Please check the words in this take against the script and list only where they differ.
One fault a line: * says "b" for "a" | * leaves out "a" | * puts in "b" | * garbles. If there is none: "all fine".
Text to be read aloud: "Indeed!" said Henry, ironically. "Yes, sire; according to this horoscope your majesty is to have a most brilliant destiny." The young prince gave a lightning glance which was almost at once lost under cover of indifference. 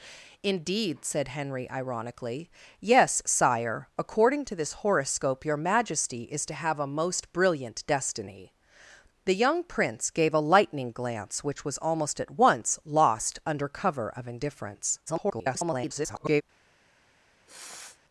* garbles